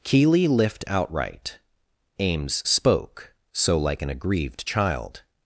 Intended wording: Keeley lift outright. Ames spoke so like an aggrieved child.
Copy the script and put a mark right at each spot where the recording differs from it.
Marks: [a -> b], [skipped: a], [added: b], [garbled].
Keeley lift outright. Ames spoke so like an aggrieved child.